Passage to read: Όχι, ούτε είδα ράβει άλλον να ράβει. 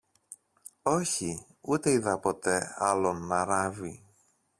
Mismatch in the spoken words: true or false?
true